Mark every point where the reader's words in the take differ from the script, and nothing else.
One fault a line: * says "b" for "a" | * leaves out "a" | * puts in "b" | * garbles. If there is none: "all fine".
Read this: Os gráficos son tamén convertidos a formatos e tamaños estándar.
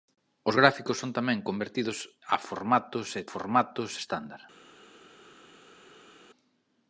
* says "formatos" for "tamaños"